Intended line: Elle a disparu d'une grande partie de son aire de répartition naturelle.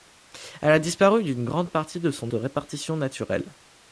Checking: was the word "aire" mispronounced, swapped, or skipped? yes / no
yes